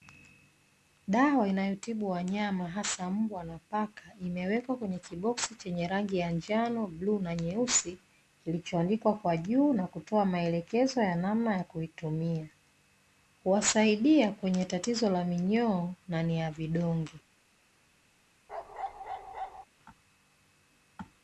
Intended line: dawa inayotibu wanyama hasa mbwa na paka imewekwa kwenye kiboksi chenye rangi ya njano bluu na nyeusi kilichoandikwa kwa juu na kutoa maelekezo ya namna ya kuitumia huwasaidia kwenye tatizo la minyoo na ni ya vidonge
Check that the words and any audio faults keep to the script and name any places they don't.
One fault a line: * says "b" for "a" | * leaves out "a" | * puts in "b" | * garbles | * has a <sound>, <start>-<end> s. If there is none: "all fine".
* has a bark, 18.5-19.7 s